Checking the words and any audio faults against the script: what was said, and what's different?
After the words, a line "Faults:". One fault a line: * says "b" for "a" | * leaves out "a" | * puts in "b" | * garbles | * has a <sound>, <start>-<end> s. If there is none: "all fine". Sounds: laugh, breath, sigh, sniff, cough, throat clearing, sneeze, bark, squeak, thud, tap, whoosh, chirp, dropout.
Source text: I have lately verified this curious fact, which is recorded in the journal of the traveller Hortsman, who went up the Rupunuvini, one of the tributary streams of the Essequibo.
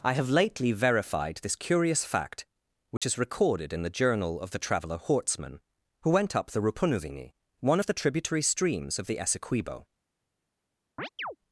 I have lately verified this curious fact, which is recorded in the journal of the traveller Hortsman, who went up the Rupunuvini, one of the tributary streams of the Essequibo.
Faults:
* has a dropout, 3.0-3.0 s
* has a chirp, 11.0-11.4 s